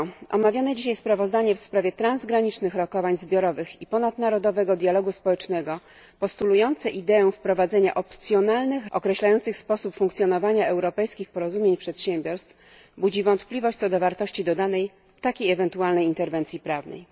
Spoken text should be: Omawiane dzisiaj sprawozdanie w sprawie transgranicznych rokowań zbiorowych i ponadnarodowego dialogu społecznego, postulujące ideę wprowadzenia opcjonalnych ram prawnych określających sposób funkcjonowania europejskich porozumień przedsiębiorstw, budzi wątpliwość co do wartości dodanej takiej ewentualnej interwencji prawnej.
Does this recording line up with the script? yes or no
no